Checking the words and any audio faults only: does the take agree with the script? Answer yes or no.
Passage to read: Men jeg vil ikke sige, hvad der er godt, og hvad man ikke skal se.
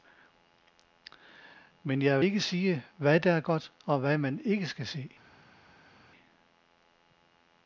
no